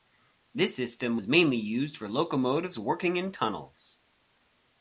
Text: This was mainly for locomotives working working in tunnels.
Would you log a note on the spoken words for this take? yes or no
yes